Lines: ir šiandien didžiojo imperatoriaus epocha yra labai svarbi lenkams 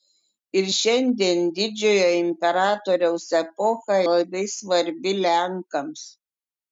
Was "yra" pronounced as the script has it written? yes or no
no